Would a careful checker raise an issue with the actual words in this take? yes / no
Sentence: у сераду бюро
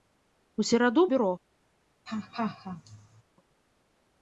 no